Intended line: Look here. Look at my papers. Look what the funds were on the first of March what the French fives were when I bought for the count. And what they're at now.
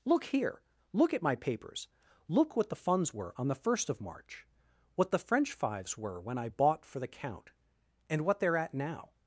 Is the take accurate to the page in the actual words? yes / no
yes